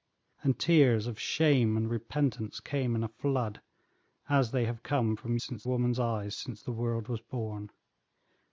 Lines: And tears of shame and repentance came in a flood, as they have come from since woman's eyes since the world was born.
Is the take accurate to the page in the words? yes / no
yes